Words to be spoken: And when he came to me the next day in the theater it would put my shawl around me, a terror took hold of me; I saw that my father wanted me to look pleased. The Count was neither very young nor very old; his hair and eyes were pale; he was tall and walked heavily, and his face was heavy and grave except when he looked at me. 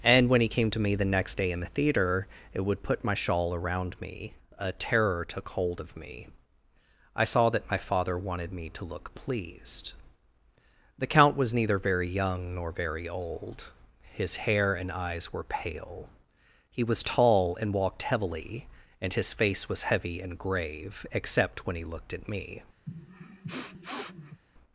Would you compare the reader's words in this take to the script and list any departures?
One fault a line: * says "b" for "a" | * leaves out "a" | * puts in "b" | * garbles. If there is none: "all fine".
all fine